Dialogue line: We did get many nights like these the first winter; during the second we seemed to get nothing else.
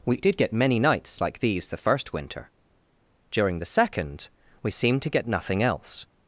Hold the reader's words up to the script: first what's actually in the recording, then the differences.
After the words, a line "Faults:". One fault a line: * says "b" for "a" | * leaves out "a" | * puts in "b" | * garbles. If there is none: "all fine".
We did get many nights like these the first winter; during the second we seemed to get nothing else.
Faults:
all fine